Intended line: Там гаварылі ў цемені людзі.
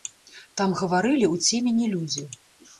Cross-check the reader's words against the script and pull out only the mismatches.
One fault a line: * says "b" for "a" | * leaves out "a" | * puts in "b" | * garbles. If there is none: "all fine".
all fine